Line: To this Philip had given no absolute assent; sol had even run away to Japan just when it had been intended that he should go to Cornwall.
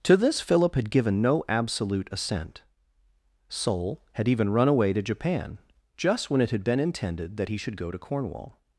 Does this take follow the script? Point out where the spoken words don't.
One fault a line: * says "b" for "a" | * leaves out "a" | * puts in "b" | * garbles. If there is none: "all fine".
all fine